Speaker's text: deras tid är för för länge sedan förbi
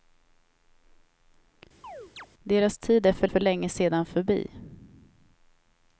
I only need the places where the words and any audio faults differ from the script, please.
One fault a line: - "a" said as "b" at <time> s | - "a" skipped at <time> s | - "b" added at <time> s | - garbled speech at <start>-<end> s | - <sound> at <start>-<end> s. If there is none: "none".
- chirp at 1.8-2.3 s